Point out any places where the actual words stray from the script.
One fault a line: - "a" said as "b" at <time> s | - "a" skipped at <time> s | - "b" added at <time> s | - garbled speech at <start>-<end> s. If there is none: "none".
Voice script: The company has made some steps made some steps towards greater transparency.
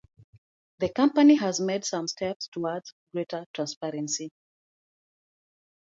- "made some steps" skipped at 2.5 s